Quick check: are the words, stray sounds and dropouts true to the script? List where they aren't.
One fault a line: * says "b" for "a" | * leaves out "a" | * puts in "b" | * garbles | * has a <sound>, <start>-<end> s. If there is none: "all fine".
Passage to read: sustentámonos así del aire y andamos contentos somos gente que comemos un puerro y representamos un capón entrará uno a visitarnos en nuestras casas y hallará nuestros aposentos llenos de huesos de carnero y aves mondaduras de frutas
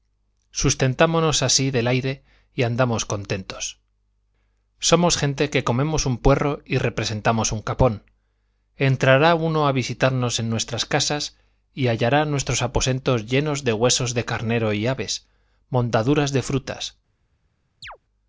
* has a chirp, 17.8-18.0 s